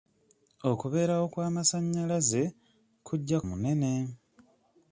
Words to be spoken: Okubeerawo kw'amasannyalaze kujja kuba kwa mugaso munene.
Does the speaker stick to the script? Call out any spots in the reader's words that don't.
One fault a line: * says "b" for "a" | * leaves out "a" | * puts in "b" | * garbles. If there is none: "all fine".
* leaves out "kuba kwa mugaso"